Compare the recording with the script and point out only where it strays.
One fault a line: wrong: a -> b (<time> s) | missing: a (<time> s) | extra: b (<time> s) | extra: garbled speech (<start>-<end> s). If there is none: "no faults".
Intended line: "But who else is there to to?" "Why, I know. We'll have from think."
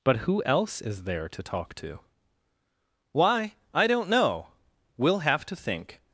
extra: talk (1.4 s)
extra: don't (3.9 s)
wrong: from -> to (5.5 s)